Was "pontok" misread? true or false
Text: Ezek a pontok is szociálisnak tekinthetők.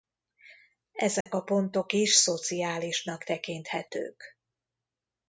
false